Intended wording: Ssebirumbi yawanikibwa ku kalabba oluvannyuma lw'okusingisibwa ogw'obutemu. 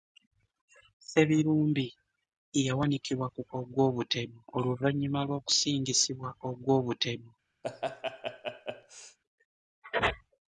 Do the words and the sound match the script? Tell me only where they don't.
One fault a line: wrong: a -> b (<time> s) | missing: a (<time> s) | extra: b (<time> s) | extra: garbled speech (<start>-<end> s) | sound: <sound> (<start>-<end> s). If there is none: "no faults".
wrong: kalabba -> ogw'obutemu (3.6 s)
sound: laugh (7.6-9.2 s)